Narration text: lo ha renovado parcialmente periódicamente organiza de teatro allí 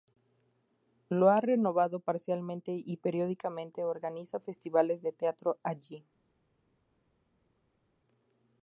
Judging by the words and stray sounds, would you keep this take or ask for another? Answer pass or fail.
fail